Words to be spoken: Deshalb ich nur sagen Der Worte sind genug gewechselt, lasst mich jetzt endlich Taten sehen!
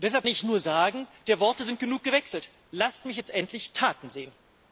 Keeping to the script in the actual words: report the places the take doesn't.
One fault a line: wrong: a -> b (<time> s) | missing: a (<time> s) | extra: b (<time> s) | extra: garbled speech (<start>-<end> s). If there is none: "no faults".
no faults